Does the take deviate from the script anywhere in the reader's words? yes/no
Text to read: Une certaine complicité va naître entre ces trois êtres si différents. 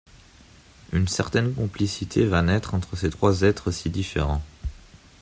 no